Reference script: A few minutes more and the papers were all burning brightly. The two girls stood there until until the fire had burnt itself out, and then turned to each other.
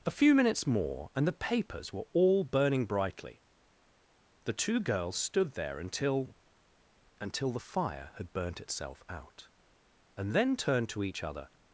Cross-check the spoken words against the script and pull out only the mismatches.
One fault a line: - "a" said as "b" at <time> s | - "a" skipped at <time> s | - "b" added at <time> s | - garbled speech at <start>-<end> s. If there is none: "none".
none